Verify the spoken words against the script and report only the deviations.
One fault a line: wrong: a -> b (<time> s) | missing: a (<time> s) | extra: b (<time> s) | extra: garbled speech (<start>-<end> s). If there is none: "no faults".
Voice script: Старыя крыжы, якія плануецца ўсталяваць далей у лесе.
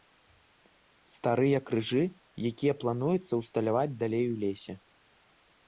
no faults